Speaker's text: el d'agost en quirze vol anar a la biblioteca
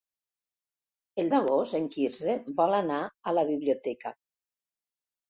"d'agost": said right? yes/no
yes